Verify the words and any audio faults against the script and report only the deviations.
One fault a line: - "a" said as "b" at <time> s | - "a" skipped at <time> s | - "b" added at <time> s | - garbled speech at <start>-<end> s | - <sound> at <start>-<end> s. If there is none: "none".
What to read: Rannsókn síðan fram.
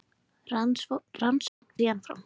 - dropout at 1.5-1.6 s